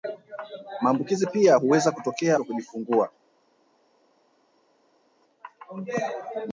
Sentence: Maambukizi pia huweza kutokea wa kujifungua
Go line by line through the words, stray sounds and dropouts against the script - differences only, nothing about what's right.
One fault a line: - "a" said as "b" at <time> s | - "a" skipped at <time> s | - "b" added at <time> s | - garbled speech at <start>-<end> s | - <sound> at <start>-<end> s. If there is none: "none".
none